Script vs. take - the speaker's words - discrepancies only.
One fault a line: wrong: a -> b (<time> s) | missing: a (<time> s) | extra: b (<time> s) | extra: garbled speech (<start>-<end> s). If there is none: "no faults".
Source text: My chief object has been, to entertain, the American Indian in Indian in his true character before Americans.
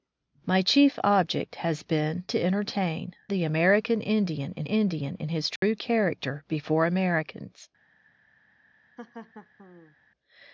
no faults